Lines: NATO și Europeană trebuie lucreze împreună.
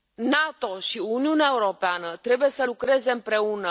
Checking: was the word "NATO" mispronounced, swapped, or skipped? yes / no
no